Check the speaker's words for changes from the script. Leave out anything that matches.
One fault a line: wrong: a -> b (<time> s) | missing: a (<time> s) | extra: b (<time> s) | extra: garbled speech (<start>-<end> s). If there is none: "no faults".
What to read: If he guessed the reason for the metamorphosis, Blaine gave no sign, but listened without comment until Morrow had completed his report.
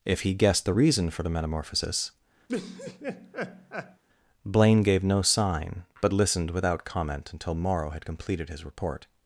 no faults